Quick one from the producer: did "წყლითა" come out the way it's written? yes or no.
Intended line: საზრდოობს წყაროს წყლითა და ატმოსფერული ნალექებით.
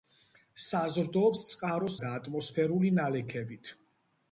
no